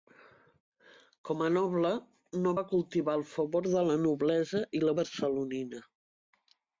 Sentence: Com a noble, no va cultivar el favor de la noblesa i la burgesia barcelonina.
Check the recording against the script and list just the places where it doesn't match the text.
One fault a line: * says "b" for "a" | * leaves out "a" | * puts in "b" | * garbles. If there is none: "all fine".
* leaves out "burgesia"